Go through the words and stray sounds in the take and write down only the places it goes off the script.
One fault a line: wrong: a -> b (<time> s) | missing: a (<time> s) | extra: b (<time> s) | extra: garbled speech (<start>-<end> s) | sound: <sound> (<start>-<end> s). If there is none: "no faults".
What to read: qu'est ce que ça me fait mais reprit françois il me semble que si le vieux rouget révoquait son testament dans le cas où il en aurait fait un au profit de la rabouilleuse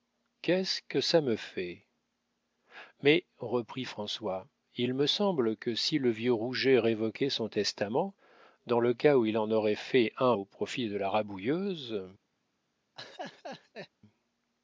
sound: laugh (13.0-13.9 s)